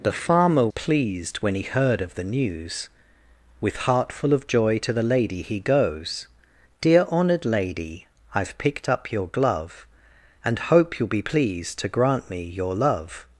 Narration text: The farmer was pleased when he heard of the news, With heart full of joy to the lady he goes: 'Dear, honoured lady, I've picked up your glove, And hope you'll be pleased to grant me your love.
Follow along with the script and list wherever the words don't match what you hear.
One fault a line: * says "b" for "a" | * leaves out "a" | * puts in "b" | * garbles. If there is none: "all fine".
* leaves out "was"